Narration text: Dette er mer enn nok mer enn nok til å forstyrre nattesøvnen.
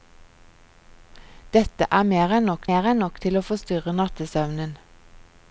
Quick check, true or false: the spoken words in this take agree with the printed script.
true